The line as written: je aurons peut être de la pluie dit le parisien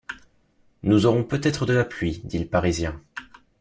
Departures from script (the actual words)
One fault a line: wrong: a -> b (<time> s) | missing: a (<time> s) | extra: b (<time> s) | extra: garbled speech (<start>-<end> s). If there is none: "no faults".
wrong: je -> nous (0.8 s)